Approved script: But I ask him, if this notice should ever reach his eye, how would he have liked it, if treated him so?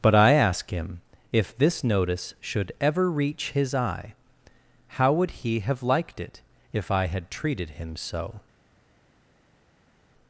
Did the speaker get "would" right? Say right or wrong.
right